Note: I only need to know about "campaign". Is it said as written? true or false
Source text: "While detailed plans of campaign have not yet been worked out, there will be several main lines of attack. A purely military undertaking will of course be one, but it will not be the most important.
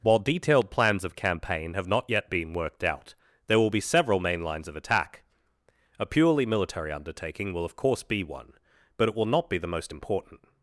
true